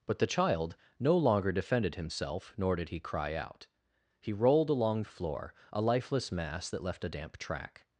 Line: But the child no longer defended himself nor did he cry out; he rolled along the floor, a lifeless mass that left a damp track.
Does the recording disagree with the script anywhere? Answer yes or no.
no